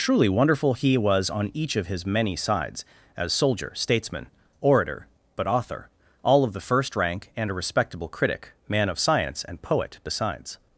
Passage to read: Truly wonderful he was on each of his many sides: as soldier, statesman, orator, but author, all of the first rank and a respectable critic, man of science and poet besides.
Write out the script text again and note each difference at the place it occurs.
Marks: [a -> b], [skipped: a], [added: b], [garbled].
Truly wonderful he was on each of his many sides: as soldier, statesman, orator, but author, all of the first rank and a respectable critic, man of science and poet besides.